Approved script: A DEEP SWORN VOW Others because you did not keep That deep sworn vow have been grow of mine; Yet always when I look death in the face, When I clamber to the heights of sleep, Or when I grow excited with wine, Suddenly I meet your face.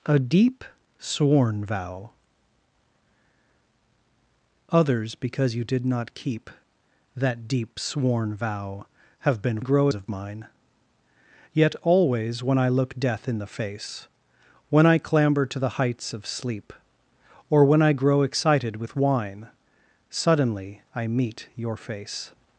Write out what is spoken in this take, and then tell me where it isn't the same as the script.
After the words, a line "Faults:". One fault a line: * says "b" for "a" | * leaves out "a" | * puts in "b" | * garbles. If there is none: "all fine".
A DEEP SWORN VOW Others because you did not keep That deep sworn vow have been grow of mine; Yet always when I look death in the face, When I clamber to the heights of sleep, Or when I grow excited with wine, Suddenly I meet your face.
Faults:
all fine